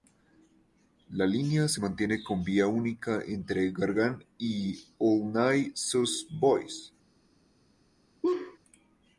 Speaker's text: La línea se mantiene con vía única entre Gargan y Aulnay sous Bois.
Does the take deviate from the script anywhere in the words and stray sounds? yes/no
yes